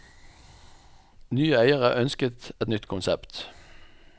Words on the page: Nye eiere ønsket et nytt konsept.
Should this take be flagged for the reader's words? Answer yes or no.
no